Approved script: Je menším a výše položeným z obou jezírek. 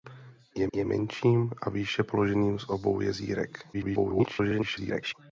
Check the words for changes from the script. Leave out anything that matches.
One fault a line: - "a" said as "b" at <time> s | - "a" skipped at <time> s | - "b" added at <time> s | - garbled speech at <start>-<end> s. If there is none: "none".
- "je" added at 0.7 s
- garbled speech at 3.7-5.1 s